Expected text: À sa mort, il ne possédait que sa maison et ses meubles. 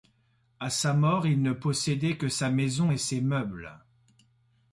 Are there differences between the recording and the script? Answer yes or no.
no